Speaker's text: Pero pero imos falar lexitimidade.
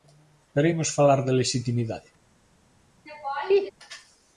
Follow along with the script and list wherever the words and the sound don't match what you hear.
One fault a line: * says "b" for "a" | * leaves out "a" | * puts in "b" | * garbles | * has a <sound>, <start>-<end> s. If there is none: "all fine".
* leaves out "pero"
* puts in "de"
* has a laugh, 3.1-3.7 s